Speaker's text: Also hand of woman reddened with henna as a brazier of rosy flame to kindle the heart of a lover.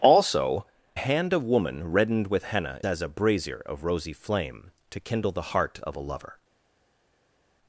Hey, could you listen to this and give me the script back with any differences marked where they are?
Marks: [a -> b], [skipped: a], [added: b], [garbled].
Also hand of woman reddened with henna as a brazier of rosy flame to kindle the heart of a lover.